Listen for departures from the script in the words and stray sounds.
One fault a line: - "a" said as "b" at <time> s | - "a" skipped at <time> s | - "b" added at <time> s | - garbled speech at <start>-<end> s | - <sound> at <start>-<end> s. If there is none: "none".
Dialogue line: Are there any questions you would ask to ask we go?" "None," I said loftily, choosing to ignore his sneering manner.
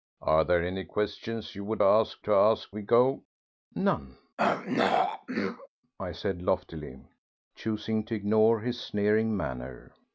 - throat clearing at 4.4-5.7 s